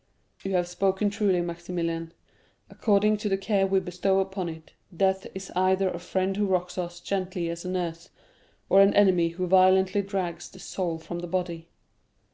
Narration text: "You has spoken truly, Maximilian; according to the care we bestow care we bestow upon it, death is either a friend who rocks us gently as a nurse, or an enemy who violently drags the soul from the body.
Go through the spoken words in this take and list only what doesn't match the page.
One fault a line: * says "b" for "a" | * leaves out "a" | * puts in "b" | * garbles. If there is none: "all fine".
* says "have" for "has"
* leaves out "care we bestow"